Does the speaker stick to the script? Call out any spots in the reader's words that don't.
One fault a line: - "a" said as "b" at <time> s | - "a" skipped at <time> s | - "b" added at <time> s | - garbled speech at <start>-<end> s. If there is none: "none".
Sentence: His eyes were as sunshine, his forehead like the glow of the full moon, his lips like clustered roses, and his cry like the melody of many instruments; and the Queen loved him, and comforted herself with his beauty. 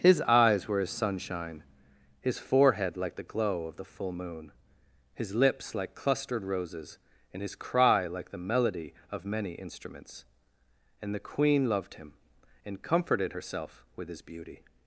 none